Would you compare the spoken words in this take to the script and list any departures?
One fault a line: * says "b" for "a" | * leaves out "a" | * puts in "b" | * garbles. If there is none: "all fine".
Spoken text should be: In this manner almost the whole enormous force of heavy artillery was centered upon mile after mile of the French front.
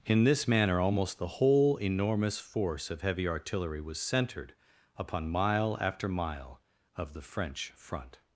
all fine